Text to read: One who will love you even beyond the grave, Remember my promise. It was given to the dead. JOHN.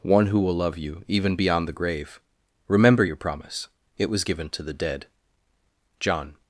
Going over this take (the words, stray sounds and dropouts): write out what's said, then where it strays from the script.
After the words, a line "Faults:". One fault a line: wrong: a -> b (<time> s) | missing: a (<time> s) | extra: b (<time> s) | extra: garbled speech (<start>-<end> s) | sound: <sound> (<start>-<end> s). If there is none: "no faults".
One who will love you even beyond the grave, Remember your promise. It was given to the dead. JOHN.
Faults:
wrong: my -> your (3.0 s)